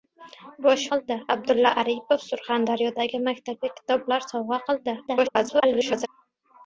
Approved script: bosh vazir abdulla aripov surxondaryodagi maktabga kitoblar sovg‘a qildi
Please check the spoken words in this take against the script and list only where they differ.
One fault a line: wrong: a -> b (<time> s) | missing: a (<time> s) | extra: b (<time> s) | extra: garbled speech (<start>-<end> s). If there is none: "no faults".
wrong: vazir -> qildi (1.0 s)
extra: garbled speech (5.1-6.1 s)